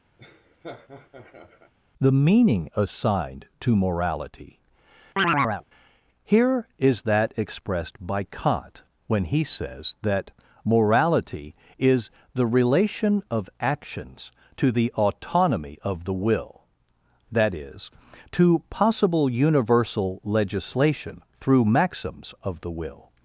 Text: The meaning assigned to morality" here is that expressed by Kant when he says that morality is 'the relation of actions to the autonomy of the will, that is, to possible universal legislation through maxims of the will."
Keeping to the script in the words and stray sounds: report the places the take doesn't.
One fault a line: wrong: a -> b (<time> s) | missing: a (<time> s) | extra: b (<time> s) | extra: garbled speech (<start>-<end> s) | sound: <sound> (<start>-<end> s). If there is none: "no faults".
sound: laugh (0.2-1.7 s)
sound: chirp (5.2-5.6 s)